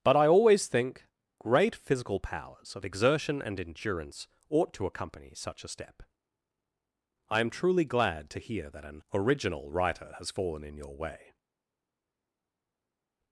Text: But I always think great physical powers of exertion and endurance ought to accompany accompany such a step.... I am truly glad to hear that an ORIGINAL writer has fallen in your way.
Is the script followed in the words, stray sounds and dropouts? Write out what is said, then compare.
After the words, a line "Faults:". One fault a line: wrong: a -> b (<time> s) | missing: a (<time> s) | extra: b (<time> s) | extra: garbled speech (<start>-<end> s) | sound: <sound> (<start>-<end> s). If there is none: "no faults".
But I always think great physical powers of exertion and endurance ought to accompany such a step.... I am truly glad to hear that an ORIGINAL writer has fallen in your way.
Faults:
missing: accompany (5.3 s)